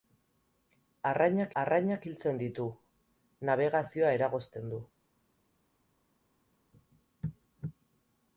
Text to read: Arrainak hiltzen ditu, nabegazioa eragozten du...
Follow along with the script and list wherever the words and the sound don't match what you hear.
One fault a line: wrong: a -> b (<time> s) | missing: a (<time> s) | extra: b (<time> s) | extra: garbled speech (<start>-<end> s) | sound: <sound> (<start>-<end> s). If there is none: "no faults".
extra: arrainak (1.6 s)